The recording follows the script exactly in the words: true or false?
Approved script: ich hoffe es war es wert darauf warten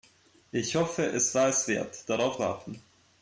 true